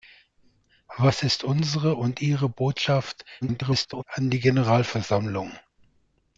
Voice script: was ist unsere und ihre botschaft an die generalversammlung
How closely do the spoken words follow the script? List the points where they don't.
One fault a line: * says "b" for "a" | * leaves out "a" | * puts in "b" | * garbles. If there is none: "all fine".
* garbles